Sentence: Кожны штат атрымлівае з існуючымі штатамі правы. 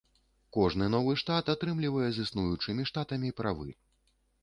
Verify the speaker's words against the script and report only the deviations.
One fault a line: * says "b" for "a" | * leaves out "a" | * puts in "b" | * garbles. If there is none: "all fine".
* puts in "новы"